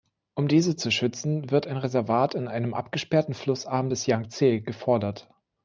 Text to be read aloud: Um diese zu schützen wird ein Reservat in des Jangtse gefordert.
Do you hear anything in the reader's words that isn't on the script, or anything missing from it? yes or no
yes